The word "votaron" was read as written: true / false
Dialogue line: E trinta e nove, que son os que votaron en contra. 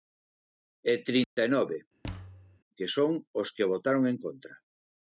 true